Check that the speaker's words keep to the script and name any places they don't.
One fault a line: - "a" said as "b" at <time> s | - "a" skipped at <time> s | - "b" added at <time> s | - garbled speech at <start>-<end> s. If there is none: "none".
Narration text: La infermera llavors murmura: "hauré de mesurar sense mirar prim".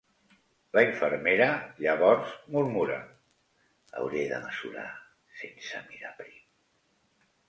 none